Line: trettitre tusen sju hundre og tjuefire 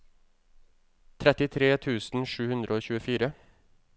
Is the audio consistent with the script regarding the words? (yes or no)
yes